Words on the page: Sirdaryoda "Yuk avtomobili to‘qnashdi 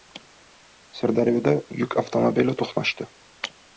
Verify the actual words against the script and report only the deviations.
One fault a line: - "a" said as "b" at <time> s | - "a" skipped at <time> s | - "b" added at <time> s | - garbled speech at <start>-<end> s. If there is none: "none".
none